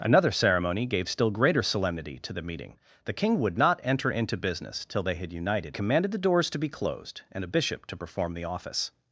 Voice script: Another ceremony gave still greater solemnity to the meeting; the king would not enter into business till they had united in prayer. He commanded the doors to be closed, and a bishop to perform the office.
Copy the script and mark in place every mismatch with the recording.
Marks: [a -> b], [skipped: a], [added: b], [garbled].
Another ceremony gave still greater solemnity to the meeting; the king would not enter into business till they had united [skipped: in prayer. He] commanded the doors to be closed, and a bishop to perform the office.